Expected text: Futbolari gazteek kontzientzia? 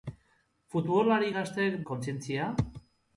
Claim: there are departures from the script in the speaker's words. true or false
false